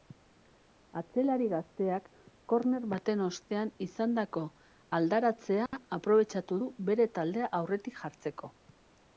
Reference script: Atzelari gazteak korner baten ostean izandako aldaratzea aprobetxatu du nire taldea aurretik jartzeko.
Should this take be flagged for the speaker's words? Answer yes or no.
yes